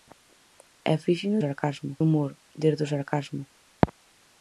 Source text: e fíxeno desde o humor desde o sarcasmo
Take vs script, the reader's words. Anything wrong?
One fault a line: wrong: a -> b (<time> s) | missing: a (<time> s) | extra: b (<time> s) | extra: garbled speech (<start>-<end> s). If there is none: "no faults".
wrong: desde -> sarcasmo (1.4 s)